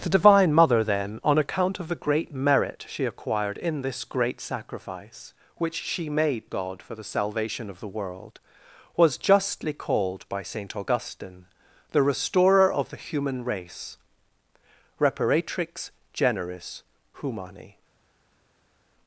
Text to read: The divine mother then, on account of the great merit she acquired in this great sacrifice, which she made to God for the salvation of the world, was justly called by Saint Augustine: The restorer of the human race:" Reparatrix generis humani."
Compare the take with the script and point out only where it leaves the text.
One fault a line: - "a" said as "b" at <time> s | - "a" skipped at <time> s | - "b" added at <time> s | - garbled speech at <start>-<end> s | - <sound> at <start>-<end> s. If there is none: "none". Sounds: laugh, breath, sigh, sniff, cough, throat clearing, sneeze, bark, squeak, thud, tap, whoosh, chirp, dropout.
- "to" skipped at 6.5 s